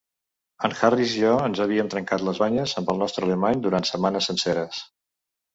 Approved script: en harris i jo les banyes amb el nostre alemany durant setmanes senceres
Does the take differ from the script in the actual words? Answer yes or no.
yes